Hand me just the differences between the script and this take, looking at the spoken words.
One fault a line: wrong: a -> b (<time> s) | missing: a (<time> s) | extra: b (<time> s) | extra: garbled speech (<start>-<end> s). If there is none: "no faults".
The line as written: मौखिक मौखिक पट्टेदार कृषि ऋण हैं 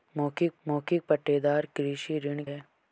no faults